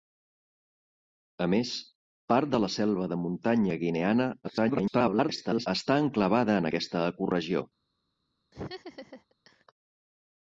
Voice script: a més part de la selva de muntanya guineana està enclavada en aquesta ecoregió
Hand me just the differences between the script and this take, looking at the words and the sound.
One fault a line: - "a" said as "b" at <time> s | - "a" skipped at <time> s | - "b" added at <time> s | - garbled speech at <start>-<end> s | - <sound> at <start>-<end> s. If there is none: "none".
- garbled speech at 4.4-5.7 s
- laugh at 8.5-9.6 s